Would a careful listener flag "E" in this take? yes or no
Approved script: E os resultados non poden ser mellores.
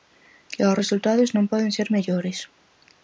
no